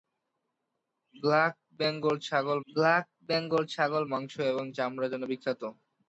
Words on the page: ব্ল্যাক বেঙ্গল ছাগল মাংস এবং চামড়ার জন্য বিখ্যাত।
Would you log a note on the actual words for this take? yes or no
yes